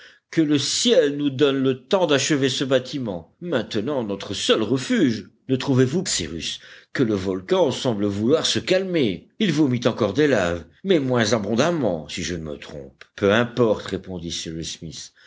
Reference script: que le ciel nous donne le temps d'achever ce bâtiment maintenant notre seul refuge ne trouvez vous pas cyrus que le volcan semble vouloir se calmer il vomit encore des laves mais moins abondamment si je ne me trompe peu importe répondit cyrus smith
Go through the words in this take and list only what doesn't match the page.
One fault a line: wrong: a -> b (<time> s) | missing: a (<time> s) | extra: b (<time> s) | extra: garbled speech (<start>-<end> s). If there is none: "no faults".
missing: pas (6.0 s)